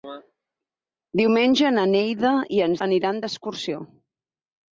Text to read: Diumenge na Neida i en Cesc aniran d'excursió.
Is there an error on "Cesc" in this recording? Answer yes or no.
yes